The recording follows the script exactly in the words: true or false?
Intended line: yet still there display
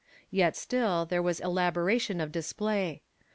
false